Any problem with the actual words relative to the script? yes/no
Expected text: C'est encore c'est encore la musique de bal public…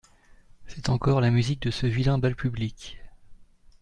yes